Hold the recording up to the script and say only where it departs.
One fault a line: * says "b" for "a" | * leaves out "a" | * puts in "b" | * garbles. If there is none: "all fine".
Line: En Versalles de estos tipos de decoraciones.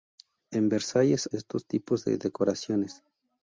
all fine